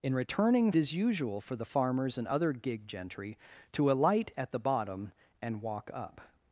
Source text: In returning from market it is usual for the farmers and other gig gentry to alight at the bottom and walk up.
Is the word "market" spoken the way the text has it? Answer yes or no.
no